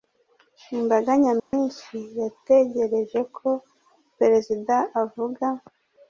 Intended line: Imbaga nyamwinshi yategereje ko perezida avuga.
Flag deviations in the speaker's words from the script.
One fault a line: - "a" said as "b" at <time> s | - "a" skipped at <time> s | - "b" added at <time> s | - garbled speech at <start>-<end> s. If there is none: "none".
none